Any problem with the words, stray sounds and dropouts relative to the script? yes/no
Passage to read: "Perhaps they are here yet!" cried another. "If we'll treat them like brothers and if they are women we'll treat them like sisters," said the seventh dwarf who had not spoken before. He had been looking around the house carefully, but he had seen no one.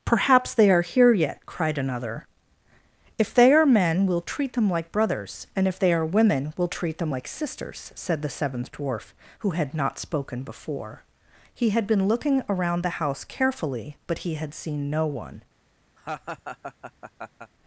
yes